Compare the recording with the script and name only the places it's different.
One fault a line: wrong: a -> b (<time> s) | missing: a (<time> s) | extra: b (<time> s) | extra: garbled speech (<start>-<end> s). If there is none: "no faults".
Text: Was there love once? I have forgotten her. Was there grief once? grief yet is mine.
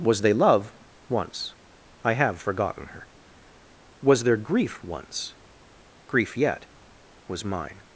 wrong: there -> they (0.2 s)
wrong: is -> was (7.3 s)